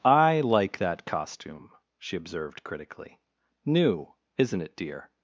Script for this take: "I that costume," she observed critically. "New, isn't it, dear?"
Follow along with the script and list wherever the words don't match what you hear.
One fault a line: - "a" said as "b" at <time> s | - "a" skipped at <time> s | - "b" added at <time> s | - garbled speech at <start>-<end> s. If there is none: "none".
- "like" added at 0.4 s